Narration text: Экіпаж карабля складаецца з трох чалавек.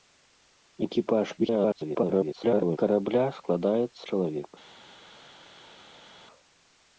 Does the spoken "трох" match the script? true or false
false